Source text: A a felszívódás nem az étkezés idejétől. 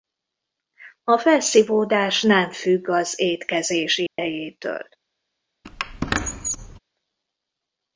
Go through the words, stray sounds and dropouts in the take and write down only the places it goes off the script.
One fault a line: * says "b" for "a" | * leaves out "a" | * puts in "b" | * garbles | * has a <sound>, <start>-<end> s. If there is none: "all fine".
* leaves out "a"
* puts in "függ"
* has a dropout, 4.1-4.2 s
* has a squeak, 5.6-6.8 s